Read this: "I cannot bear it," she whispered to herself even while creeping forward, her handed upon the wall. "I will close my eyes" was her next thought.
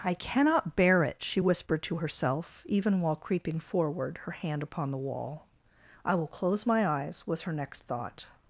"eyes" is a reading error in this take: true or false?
false